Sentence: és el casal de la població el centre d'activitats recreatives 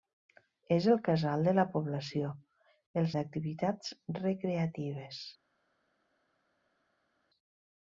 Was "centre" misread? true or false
true